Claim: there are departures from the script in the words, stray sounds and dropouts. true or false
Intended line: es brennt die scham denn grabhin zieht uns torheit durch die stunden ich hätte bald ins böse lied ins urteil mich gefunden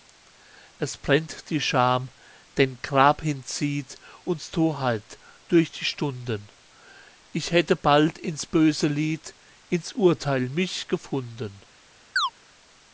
true